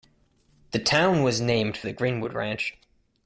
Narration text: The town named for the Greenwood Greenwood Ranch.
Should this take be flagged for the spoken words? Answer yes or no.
yes